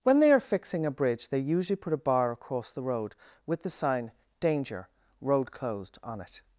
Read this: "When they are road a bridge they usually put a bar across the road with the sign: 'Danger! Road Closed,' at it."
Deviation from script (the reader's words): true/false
true